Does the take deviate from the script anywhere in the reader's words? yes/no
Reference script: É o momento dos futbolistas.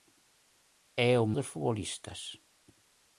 yes